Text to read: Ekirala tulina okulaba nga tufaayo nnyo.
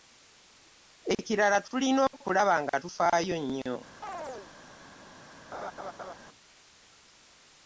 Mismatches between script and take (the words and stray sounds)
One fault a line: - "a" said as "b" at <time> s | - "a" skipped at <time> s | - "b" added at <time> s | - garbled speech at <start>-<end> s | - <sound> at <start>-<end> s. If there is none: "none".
- chirp at 4.0-4.5 s
- laugh at 5.5-6.1 s